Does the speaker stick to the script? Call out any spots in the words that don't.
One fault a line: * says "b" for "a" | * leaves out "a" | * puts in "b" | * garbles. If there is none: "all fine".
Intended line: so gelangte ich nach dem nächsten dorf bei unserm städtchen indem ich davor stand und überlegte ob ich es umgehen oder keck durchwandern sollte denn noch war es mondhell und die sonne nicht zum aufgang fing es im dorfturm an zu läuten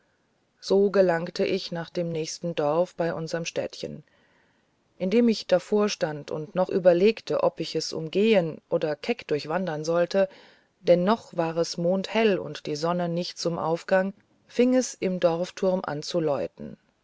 * puts in "noch"